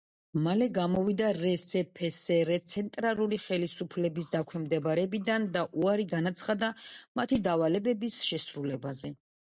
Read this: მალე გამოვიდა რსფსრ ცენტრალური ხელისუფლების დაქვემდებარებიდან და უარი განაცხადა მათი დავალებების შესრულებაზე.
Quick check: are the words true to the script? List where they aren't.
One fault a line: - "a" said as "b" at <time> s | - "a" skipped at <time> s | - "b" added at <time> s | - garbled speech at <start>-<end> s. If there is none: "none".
none